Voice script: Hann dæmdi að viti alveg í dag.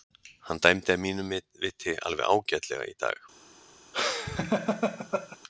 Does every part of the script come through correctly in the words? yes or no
no